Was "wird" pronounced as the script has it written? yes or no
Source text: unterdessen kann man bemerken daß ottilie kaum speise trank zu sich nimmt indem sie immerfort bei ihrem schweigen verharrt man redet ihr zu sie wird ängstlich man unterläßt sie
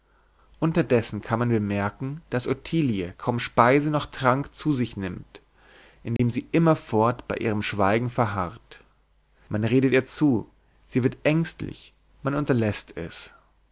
yes